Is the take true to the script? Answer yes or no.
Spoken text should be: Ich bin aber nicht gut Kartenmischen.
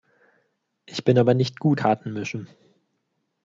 yes